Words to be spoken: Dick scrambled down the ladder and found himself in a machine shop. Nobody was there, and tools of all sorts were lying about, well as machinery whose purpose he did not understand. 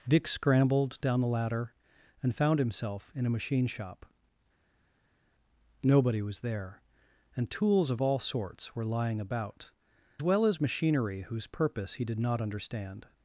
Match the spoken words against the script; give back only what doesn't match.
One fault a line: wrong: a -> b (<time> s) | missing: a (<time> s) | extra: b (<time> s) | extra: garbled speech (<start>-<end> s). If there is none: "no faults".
no faults